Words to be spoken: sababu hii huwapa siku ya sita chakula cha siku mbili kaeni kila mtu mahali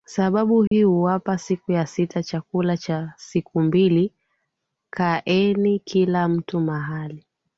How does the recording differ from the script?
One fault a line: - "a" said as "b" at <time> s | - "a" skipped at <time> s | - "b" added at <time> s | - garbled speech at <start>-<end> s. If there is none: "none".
none